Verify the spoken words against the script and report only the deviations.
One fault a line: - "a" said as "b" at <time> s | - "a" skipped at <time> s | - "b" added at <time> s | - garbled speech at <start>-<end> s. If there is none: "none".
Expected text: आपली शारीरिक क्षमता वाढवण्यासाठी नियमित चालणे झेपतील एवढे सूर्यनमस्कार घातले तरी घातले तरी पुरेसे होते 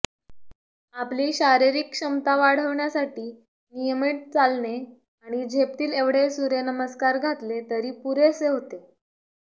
- "आणि" added at 5.2 s
- "घातले तरी" skipped at 7.9 s